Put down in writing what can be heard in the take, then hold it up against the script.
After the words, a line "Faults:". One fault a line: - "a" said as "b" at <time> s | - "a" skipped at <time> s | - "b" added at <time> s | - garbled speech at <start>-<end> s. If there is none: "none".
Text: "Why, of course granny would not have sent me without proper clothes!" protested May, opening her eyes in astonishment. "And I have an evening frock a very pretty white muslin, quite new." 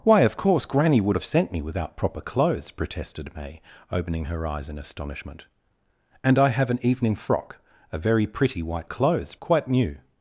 "Why, of course granny would have sent me without proper clothes!" protested May, opening her eyes in astonishment. "And I have an evening frock a very pretty white clothes, quite new."
Faults:
- "not" skipped at 1.2 s
- "muslin" said as "clothes" at 8.8 s